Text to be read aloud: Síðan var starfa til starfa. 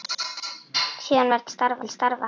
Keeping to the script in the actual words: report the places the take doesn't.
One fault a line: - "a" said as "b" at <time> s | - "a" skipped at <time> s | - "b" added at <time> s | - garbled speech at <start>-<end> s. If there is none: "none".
none